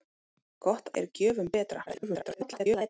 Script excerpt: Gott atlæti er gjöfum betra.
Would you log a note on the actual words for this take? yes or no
yes